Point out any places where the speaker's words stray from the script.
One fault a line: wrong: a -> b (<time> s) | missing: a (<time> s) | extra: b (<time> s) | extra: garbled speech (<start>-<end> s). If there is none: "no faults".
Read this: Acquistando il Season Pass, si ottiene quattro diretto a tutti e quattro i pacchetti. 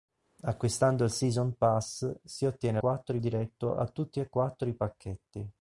no faults